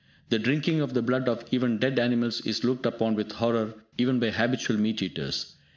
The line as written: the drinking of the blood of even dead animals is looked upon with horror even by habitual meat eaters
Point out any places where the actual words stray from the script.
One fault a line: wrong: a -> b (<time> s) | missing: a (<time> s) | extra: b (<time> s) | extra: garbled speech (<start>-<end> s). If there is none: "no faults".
no faults